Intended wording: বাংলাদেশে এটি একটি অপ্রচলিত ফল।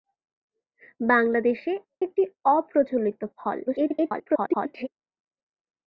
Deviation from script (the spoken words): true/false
true